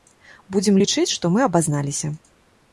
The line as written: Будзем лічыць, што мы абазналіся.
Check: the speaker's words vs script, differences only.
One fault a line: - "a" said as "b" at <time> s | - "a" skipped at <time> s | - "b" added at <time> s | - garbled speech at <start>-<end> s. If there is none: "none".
none